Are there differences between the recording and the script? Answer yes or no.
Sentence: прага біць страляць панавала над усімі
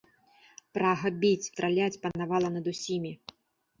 no